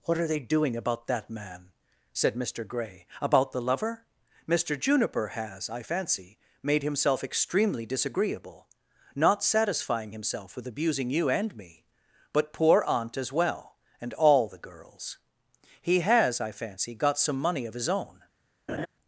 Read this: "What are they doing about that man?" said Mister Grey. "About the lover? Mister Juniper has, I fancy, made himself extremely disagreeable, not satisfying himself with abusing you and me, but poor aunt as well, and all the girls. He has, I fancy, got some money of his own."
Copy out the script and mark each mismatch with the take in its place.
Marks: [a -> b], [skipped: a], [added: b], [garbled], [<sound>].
"What are they doing about that man?" said Mister Grey. "About the lover? Mister Juniper has, I fancy, made himself extremely disagreeable, not satisfying himself with abusing you and me, but poor aunt as well, and all the girls. He has, I fancy, got some money of his own." [laugh]